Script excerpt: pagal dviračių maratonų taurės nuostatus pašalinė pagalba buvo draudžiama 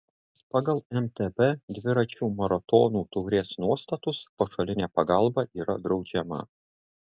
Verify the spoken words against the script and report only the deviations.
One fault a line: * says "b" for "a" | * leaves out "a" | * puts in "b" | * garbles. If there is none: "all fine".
* puts in "mtb"
* says "yra" for "buvo"